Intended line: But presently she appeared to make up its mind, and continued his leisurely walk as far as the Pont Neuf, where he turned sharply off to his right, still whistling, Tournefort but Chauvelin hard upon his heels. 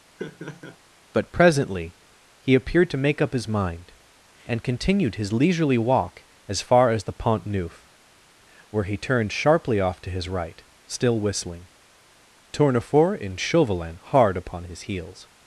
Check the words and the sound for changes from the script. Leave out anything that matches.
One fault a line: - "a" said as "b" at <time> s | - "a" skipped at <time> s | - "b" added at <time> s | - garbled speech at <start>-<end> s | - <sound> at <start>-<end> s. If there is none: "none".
- laugh at 0.2-0.8 s
- "she" said as "he" at 2.4 s
- "its" said as "his" at 3.3 s
- "but" said as "and" at 13.2 s